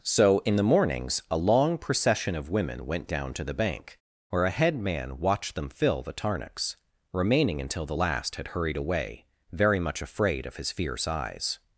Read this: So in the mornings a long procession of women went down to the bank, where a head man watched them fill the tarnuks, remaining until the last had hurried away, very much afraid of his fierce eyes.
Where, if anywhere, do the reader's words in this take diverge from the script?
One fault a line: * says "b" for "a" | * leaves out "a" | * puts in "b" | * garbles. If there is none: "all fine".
all fine